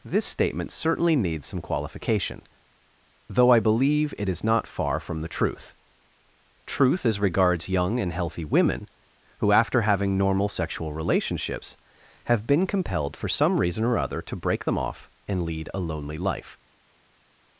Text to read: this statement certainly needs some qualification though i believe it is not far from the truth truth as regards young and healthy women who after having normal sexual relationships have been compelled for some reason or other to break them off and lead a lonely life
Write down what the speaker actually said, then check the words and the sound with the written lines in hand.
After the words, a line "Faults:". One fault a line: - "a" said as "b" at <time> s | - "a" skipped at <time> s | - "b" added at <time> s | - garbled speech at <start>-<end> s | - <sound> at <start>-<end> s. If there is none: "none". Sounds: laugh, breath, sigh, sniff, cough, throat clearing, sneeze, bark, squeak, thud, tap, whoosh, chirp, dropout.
this statement certainly needs some qualification though i believe it is not far from the truth truth as regards young and healthy women who after having normal sexual relationships have been compelled for some reason or other to break them off and lead a lonely life
Faults:
none